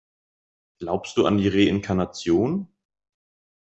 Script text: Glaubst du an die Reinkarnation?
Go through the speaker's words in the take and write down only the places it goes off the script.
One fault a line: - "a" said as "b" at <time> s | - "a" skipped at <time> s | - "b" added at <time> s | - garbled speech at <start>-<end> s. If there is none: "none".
none